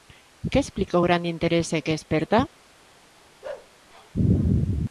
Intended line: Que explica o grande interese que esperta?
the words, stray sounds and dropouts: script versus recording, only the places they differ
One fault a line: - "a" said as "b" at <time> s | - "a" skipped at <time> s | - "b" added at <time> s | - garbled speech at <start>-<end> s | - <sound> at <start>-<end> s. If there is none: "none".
- bark at 3.4-3.7 s